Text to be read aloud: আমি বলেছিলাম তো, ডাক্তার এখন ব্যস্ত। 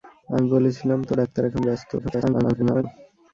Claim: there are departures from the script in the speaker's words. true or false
true